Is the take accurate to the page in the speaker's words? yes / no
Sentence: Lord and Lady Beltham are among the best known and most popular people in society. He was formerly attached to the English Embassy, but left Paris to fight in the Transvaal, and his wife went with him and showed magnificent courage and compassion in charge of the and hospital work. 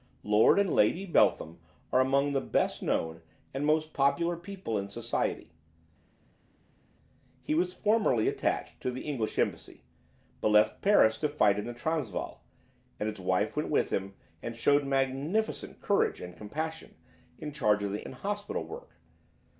yes